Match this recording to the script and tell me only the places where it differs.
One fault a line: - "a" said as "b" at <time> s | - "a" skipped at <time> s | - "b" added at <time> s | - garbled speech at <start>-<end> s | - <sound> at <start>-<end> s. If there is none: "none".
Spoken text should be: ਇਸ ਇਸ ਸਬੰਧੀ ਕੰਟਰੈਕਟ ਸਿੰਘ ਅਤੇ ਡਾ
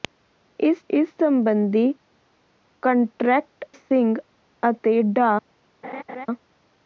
- laugh at 5.8-6.3 s